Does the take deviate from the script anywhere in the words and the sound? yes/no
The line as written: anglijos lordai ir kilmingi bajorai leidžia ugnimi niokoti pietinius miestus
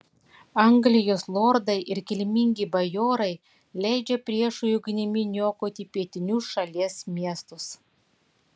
yes